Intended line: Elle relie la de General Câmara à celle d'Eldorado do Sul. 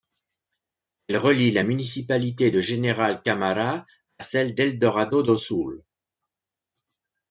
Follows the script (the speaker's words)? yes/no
no